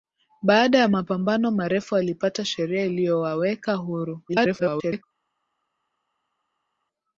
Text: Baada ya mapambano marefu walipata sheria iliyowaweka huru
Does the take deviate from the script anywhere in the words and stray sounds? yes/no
yes